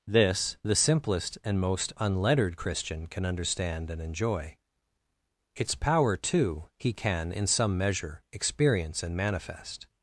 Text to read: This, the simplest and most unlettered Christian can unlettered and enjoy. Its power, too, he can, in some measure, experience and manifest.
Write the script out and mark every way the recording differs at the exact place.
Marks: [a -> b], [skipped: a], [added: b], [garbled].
This, the simplest and most unlettered Christian can [unlettered -> understand] and enjoy. Its power, too, he can, in some measure, experience and manifest.